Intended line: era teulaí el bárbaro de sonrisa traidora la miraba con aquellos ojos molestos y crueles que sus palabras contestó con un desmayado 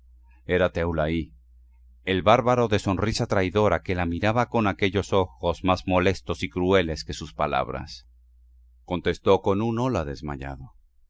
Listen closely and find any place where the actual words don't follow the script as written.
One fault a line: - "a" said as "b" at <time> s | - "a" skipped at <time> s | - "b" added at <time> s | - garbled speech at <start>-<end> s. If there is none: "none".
- "que" added at 3.8 s
- "más" added at 5.7 s
- "hola" added at 9.8 s